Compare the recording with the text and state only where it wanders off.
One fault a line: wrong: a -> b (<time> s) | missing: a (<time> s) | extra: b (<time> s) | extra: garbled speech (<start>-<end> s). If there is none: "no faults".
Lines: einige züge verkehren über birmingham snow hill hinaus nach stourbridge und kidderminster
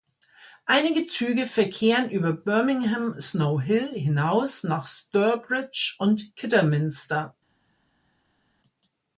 no faults